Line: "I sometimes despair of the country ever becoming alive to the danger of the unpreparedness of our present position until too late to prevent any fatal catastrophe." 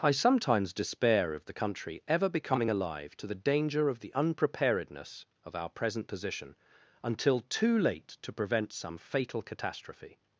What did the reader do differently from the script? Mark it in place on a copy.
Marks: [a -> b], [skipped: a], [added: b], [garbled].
"I sometimes despair of the country ever becoming alive to the danger of the unpreparedness of our present position until too late to prevent [any -> some] fatal catastrophe."